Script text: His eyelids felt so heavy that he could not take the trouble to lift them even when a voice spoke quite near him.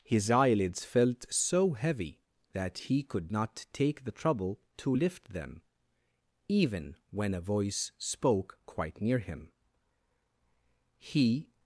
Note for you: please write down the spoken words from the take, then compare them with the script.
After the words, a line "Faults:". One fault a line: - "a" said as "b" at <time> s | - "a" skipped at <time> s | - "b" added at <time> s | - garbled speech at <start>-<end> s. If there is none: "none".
His eyelids felt so heavy that he could not take the trouble to lift them even when a voice spoke quite near him. He
Faults:
- "He" added at 11.0 s